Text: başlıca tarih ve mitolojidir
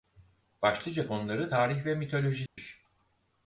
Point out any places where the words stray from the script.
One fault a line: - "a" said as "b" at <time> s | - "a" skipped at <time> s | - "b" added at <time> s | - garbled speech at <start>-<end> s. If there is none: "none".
- "konuları" added at 1.0 s